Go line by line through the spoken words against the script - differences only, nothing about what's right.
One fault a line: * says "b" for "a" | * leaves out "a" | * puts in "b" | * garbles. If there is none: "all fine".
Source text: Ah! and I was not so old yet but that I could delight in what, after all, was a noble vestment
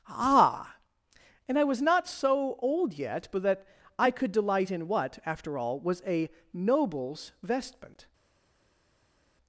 * says "nobles" for "noble"